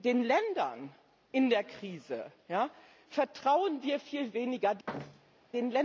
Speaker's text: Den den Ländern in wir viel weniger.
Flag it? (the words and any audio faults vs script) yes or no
yes